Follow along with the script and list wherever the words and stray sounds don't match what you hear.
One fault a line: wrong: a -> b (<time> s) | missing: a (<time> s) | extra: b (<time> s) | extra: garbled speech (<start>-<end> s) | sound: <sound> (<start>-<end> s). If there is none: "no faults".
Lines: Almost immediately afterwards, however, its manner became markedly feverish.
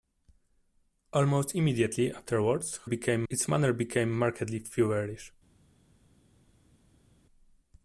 wrong: however -> became (2.8 s)